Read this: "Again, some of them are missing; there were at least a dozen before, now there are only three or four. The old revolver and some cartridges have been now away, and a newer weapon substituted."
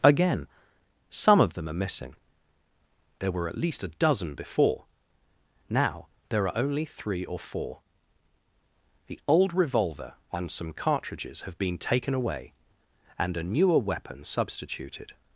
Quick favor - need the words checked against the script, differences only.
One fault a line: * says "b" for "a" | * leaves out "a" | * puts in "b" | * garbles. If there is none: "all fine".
* says "taken" for "now"